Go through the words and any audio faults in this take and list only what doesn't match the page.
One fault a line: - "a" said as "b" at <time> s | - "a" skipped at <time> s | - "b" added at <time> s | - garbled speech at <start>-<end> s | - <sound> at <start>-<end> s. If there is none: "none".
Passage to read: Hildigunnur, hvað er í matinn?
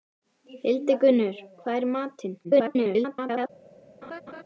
- garbled speech at 2.4-3.5 s
- laugh at 4.0-4.4 s